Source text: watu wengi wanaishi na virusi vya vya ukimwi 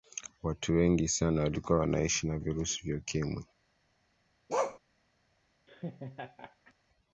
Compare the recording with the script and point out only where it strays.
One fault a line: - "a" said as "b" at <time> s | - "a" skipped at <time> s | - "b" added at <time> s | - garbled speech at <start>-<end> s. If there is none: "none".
- "sana walikuwa" added at 1.1 s
- "vya" skipped at 3.0 s